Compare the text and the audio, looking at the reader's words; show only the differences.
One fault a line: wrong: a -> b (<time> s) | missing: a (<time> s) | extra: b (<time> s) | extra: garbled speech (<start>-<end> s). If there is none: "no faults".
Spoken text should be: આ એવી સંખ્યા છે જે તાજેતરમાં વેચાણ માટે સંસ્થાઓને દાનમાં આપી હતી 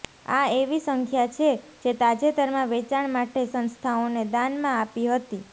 no faults